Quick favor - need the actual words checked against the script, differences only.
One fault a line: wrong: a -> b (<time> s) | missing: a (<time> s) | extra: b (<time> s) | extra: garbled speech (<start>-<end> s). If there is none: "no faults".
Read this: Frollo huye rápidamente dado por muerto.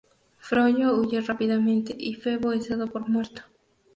extra: y Febo es (1.9 s)